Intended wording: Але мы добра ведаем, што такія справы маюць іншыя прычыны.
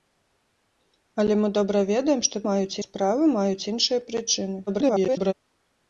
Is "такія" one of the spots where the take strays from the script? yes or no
yes